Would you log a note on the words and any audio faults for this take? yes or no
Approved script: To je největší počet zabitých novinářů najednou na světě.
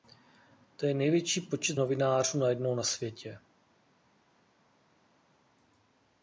yes